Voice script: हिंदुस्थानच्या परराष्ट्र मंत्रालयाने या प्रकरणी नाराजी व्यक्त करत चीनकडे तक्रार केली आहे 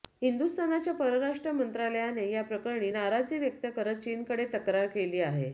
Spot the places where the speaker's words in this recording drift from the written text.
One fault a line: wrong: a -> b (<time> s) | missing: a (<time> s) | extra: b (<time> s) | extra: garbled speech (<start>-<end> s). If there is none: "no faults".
no faults